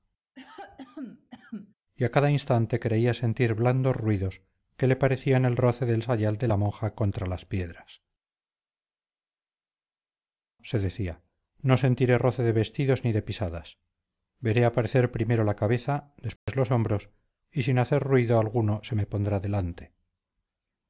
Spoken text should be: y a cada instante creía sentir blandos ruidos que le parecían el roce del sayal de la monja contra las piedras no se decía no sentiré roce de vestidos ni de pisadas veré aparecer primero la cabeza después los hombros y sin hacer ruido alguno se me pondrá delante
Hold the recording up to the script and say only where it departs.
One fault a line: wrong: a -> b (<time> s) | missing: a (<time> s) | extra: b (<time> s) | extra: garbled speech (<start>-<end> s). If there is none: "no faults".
missing: no (8.0 s)